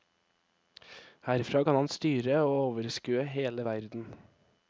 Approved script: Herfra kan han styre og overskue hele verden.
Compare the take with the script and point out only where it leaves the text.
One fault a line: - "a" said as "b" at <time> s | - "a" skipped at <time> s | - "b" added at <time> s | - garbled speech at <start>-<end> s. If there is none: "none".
none